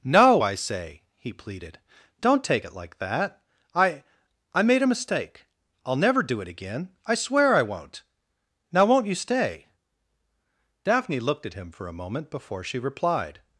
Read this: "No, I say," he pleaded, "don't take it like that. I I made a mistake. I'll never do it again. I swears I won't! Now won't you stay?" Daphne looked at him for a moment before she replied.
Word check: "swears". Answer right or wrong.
wrong